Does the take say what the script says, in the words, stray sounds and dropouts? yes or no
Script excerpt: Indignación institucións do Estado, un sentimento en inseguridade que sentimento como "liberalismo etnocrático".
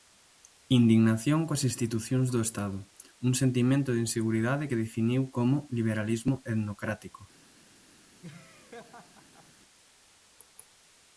no